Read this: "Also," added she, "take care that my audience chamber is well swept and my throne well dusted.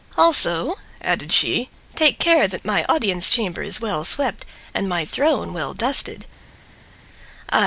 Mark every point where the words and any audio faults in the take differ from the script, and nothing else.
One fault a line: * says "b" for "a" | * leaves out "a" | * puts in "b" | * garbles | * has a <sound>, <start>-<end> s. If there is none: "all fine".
all fine